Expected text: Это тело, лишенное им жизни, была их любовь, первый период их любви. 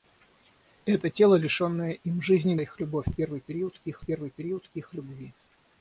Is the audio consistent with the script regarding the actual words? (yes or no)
no